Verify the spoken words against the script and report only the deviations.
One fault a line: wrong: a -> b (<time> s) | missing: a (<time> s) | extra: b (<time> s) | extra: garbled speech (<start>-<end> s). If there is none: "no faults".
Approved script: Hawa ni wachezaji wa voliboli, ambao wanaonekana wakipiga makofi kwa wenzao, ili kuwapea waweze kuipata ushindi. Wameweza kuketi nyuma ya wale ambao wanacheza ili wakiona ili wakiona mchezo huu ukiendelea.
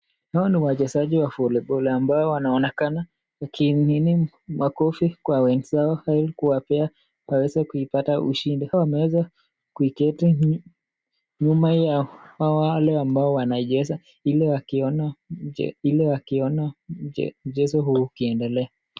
no faults